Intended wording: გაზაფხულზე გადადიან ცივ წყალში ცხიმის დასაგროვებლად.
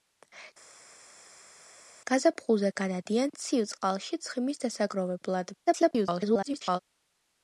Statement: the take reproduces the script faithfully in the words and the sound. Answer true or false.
false